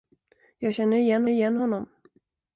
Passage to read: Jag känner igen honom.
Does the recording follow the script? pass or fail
fail